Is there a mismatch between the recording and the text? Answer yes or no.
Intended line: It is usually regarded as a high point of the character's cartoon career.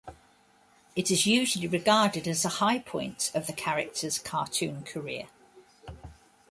no